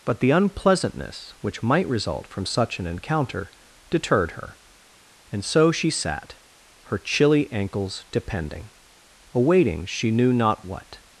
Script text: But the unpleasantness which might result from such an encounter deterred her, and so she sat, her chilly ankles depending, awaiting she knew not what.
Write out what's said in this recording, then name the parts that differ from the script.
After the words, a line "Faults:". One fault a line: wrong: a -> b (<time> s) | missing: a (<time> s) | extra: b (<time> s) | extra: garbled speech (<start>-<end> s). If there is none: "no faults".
But the unpleasantness which might result from such an encounter deterred her, and so she sat, her chilly ankles depending, awaiting she knew not what.
Faults:
no faults